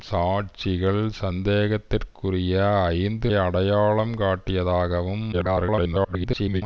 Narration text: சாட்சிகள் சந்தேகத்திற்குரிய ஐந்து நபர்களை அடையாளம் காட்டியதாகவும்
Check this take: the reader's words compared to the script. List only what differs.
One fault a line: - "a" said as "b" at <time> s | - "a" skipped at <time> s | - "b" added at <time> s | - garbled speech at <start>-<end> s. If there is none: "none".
- "நபர்களை" skipped at 3.3 s
- garbled speech at 5.3-6.6 s